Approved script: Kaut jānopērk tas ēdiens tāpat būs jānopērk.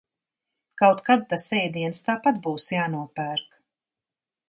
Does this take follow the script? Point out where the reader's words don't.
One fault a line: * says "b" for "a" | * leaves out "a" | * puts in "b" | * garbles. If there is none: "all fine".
* says "kad" for "jānopērk"